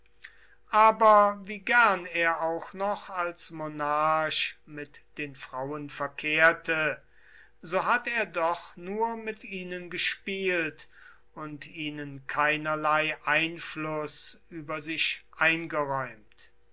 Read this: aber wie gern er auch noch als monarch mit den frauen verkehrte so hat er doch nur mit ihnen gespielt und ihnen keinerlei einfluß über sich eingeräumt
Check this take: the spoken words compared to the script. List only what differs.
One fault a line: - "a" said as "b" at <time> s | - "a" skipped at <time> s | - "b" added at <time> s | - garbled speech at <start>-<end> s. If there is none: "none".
none